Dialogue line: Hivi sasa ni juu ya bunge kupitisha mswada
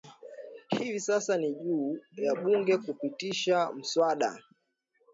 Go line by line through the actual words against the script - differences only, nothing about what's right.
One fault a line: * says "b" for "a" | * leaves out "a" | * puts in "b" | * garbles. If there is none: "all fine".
all fine